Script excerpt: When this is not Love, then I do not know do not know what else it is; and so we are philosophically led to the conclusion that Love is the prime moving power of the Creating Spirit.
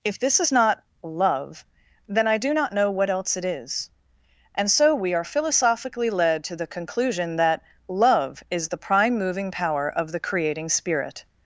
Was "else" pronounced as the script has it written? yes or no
yes